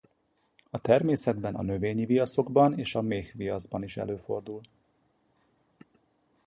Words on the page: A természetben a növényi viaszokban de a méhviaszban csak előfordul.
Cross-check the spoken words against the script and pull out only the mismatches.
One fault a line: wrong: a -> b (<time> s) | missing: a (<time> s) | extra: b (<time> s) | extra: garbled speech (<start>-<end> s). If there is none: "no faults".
wrong: de -> és (2.8 s)
wrong: csak -> is (3.8 s)